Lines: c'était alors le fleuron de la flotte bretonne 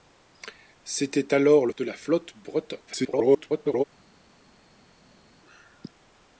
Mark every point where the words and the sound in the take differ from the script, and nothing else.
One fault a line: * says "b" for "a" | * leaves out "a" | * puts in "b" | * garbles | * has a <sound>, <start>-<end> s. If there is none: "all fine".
* leaves out "fleuron"
* garbles